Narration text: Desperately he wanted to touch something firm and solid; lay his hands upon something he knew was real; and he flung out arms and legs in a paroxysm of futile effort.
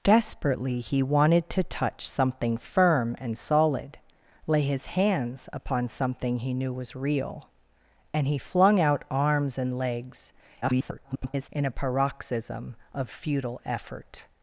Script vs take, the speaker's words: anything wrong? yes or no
yes